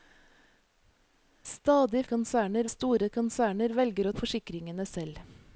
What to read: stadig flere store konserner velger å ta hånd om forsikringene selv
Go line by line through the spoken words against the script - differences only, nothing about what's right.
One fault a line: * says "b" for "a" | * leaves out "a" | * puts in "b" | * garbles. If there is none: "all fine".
* says "konserner" for "flere"
* leaves out "ta hånd"